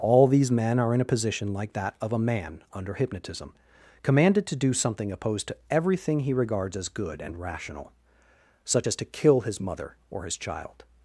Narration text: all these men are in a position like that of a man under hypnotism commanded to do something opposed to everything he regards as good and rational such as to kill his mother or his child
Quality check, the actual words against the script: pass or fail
pass